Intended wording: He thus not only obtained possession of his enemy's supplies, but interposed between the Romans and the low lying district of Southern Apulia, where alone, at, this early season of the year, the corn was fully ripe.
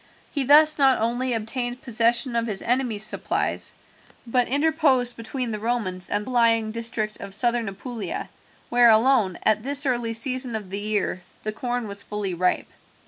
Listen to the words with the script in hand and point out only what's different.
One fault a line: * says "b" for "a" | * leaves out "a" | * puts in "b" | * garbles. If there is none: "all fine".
* leaves out "low"